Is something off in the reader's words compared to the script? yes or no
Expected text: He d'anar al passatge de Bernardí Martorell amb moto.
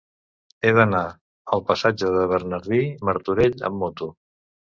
no